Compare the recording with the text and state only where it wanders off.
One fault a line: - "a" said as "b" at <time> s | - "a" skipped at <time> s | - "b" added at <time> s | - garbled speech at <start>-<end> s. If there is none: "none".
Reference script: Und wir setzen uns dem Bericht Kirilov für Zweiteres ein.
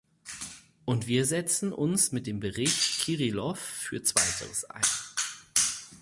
- "mit" added at 2.1 s